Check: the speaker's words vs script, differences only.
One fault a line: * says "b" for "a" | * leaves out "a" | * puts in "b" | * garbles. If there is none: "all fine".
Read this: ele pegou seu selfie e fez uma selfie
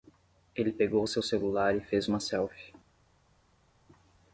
* says "celular" for "selfie"